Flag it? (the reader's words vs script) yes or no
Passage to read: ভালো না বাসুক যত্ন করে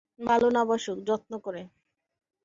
no